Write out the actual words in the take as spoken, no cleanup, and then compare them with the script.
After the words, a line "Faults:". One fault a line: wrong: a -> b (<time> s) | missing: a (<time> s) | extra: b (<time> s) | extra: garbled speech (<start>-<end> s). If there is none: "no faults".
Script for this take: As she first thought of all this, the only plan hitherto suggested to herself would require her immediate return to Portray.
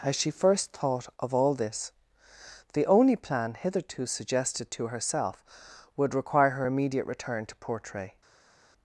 As she first thought of all this, the only plan hitherto suggested to herself would require her immediate return to Portray.
Faults:
no faults